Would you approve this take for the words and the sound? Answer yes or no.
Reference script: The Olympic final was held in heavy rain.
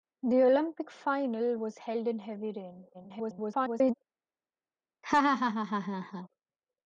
no